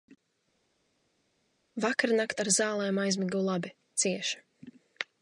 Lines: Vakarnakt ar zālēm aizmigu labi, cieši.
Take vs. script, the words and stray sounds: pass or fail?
pass